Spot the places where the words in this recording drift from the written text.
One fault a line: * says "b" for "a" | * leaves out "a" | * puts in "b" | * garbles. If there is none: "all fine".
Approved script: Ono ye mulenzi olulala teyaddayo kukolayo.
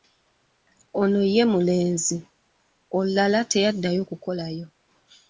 all fine